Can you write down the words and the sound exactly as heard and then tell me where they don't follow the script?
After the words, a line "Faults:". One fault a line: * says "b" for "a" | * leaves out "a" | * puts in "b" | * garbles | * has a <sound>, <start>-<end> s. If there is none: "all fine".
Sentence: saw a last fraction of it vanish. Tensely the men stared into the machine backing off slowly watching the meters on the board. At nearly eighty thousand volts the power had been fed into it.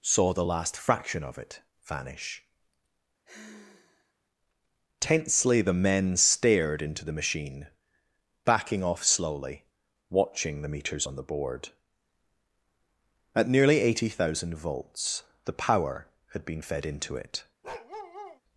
saw the last fraction of it vanish. Tensely the men stared into the machine backing off slowly watching the meters on the board. At nearly eighty thousand volts the power had been fed into it.
Faults:
* says "the" for "a"
* has a sigh, 3.2-4.1 s
* has a bark, 17.6-18.4 s